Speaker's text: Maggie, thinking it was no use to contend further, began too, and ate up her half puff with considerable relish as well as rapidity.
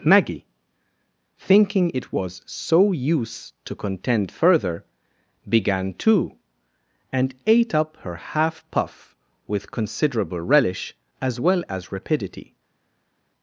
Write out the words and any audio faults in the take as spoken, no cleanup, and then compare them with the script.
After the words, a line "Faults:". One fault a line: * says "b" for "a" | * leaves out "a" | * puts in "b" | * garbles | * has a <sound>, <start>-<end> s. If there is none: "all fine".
Maggie, thinking it was so use to contend further, began too, and ate up her half puff with considerable relish as well as rapidity.
Faults:
* says "so" for "no"